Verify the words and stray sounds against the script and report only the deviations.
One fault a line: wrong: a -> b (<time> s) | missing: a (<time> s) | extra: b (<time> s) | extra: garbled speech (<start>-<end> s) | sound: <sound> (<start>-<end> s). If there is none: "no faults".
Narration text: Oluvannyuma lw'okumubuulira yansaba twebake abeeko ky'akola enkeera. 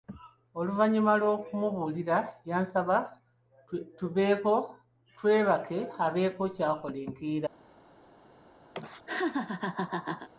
sound: laugh (8.7-10.3 s)